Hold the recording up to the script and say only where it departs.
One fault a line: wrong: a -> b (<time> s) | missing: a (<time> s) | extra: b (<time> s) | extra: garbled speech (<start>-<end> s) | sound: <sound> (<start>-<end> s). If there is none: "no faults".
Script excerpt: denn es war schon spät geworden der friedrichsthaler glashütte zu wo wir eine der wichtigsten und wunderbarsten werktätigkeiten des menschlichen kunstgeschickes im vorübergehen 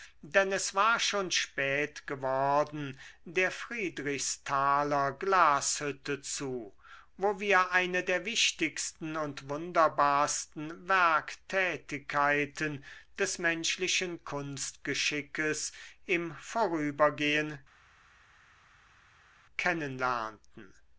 no faults